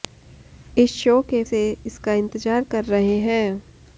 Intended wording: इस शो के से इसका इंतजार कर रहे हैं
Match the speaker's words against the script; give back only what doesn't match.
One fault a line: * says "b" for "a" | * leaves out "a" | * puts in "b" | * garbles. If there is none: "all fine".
all fine